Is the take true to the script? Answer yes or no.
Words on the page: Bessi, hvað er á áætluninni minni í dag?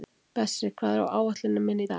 yes